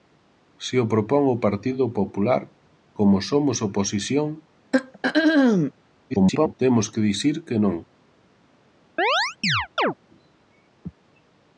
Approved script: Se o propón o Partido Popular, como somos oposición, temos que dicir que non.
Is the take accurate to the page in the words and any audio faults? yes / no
no